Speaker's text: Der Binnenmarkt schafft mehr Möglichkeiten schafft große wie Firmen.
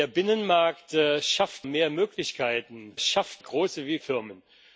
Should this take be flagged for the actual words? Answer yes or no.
no